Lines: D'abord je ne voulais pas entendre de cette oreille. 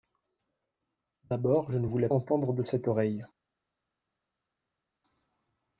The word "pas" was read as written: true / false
false